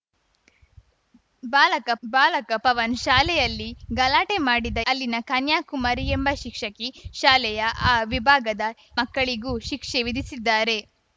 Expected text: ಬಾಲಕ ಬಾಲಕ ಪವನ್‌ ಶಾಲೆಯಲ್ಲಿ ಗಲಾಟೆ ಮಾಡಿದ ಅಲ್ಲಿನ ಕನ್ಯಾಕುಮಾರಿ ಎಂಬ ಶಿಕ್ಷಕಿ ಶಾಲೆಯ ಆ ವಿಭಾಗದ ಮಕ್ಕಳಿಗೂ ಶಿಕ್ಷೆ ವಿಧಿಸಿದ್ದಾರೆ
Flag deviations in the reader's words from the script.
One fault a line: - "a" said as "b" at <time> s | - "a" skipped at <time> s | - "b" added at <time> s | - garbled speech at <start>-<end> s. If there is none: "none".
none